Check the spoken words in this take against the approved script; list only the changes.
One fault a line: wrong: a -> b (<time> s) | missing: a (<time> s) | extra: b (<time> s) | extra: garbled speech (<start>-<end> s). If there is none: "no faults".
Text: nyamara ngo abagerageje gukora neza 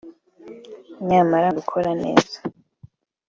missing: ngo abagerageje (1.5 s)